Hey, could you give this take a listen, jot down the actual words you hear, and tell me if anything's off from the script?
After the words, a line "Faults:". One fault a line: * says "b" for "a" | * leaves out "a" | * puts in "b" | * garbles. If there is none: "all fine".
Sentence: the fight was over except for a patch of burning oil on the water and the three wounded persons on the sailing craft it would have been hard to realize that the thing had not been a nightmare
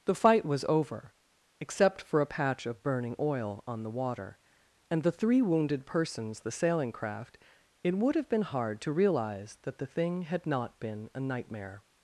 the fight was over except for a patch of burning oil on the water and the three wounded persons the sailing craft it would have been hard to realize that the thing had not been a nightmare
Faults:
* leaves out "on"